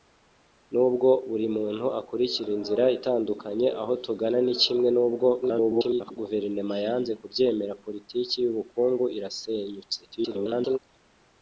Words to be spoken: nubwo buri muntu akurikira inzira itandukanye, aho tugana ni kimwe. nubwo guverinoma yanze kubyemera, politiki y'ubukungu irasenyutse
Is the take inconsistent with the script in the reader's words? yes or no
yes